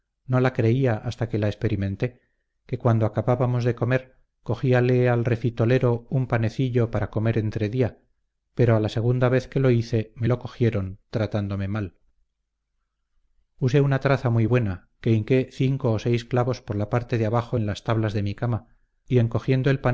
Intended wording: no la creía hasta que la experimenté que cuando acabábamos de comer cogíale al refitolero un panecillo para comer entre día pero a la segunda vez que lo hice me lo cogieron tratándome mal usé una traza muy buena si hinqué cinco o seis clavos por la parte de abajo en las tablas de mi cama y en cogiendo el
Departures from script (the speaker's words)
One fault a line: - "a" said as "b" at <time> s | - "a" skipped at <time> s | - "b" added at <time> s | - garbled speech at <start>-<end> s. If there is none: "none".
- "si" said as "que" at 15.0 s